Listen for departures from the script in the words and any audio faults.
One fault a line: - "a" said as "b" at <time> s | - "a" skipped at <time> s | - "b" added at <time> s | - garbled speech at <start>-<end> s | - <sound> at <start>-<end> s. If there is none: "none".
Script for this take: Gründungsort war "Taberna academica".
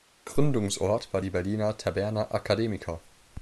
- "die Berliner" added at 1.2 s